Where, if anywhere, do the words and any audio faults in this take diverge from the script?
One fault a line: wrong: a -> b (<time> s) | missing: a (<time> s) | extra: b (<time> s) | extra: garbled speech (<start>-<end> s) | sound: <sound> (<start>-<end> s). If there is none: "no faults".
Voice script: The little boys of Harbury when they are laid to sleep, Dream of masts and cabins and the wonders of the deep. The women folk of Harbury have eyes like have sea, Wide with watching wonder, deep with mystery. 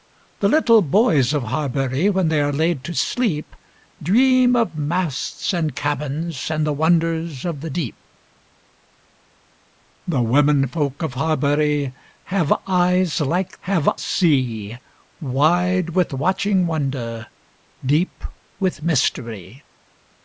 no faults